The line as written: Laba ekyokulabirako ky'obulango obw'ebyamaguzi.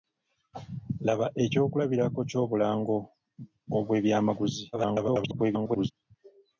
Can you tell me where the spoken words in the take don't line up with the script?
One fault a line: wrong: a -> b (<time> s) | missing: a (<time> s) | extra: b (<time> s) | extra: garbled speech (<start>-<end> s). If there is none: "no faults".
extra: garbled speech (4.7-5.9 s)